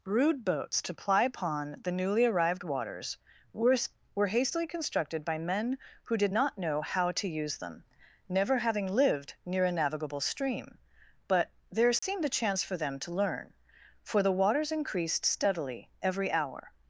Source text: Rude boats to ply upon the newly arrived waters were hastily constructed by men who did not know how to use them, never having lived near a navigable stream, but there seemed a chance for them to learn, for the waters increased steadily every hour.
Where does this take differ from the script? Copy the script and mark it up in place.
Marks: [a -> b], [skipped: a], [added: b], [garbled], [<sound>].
Rude boats to ply upon the newly arrived waters were [added: were] hastily constructed by men who did not know how to use them, never having lived near a navigable stream, but there seemed [dropout] a chance for them to learn, for the waters increased steadily every hour.